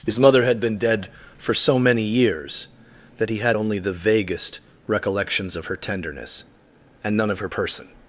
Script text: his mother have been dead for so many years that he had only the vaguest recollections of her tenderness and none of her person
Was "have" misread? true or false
true